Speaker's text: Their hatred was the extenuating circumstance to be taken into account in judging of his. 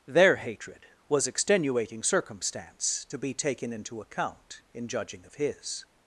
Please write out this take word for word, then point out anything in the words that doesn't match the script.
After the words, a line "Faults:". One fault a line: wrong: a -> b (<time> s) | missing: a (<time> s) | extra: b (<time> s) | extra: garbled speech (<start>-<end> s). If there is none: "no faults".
Their hatred was extenuating circumstance to be taken into account in judging of his.
Faults:
missing: the (1.3 s)